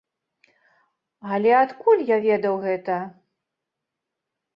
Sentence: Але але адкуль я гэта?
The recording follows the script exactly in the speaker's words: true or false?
false